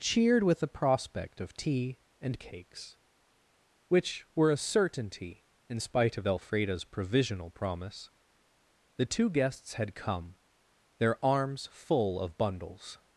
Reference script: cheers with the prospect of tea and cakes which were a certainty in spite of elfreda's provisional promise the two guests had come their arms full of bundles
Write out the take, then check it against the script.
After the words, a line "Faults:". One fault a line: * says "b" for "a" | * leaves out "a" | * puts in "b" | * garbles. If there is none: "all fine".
cheered with the prospect of tea and cakes which were a certainty in spite of elfreda's provisional promise the two guests had come their arms full of bundles
Faults:
* says "cheered" for "cheers"